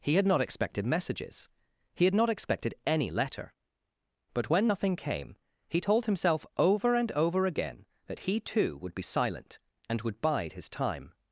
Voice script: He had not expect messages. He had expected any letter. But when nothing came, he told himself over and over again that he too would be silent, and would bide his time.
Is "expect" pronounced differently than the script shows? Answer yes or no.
yes